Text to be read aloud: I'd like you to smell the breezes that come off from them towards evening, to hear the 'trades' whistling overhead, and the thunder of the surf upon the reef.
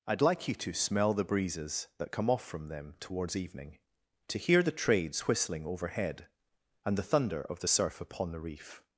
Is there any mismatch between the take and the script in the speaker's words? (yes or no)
no